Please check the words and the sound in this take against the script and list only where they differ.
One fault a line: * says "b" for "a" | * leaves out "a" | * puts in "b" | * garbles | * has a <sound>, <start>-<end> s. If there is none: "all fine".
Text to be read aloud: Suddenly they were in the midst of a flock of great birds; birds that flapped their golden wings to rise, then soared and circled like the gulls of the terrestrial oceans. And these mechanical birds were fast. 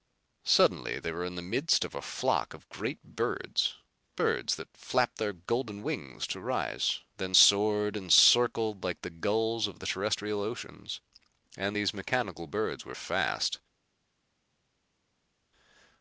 all fine